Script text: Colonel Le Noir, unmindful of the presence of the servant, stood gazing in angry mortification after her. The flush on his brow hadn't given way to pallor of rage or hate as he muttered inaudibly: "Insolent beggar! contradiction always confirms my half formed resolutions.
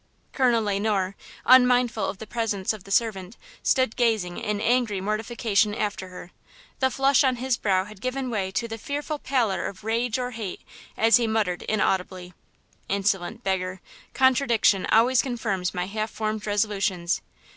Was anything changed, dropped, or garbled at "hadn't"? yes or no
yes